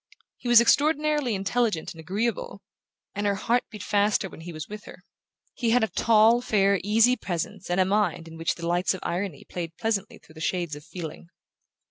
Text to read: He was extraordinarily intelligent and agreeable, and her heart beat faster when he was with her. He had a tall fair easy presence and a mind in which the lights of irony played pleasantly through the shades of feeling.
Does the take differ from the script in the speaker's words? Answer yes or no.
no